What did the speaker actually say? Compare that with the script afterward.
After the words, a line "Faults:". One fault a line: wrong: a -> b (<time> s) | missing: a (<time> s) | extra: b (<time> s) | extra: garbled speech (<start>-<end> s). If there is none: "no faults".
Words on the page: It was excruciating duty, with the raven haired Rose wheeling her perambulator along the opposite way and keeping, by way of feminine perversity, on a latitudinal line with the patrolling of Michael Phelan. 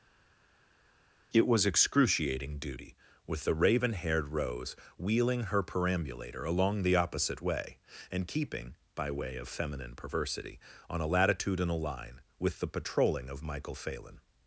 It was excruciating duty, with the raven haired Rose wheeling her perambulator along the opposite way and keeping, by way of feminine perversity, on a latitudinal line with the patrolling of Michael Phelan.
Faults:
no faults